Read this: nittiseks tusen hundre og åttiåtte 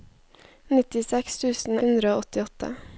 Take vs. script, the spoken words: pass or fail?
pass